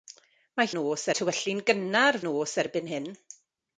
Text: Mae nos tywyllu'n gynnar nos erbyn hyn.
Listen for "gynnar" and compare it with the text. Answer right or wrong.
right